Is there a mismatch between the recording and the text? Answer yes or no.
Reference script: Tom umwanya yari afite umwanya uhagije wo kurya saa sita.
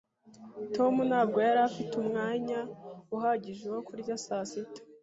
yes